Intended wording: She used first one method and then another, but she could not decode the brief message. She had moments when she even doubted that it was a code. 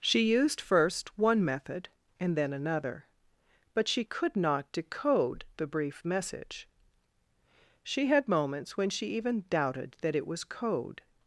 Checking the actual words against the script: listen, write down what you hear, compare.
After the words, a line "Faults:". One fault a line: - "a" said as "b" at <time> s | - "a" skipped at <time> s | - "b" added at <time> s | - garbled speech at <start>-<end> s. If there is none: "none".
She used first one method and then another, but she could not decode the brief message. She had moments when she even doubted that it was code.
Faults:
- "a" skipped at 10.4 s